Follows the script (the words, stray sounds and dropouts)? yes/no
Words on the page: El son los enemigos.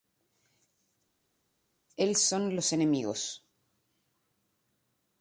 yes